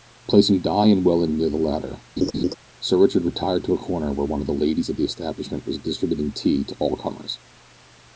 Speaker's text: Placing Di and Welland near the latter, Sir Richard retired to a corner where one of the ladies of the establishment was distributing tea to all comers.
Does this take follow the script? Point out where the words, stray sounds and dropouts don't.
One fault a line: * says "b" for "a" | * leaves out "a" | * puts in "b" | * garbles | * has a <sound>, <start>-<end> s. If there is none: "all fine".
* has a laugh, 2.2-2.5 s